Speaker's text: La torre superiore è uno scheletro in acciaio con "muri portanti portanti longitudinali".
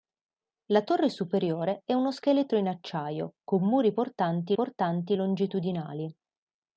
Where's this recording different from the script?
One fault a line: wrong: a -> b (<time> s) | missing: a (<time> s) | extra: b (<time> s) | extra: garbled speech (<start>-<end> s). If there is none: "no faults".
no faults